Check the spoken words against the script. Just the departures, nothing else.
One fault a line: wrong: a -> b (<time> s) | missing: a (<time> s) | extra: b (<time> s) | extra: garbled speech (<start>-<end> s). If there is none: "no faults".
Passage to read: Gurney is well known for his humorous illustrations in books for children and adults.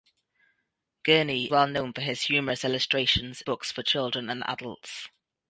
missing: is (1.5 s)
missing: in (3.4 s)